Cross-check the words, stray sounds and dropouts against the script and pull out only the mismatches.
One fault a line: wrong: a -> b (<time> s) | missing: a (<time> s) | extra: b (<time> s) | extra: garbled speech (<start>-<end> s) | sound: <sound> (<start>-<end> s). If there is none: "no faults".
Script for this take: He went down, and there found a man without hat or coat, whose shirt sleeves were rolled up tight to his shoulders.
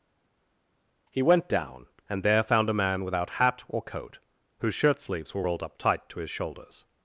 no faults